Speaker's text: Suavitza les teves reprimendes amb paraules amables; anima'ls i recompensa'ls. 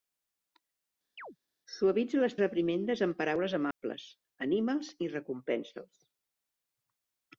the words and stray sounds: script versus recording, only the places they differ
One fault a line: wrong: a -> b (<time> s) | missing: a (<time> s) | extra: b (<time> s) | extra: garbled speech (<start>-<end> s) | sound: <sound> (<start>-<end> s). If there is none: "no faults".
sound: chirp (1.2-1.4 s)
missing: teves (2.4 s)
sound: dropout (3.7-3.8 s)